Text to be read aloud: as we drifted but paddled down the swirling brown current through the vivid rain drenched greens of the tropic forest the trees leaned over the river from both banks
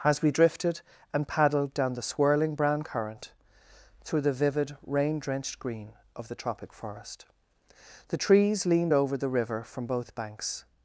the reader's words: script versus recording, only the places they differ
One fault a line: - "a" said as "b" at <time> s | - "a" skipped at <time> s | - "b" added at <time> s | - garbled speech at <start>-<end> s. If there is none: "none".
- "but" said as "and" at 1.1 s
- "greens" said as "green" at 5.6 s